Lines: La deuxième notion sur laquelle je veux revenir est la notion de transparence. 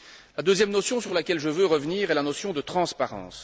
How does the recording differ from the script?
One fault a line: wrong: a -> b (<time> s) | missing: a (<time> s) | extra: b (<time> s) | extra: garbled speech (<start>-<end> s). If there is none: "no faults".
extra: sur (1.0 s)